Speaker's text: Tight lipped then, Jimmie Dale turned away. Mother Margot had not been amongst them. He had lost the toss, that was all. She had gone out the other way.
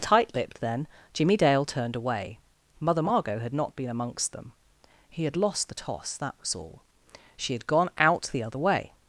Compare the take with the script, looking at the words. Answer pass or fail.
pass